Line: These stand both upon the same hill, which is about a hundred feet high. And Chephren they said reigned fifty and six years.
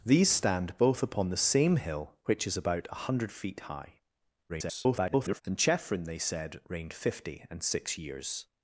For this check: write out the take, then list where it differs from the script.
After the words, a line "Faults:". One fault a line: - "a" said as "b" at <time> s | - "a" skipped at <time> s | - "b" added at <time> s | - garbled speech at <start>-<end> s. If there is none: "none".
These stand both upon the same hill, which is about a hundred feet high. [garbled] And Chephren they said reigned fifty and six years.
Faults:
- garbled speech at 4.5-5.4 s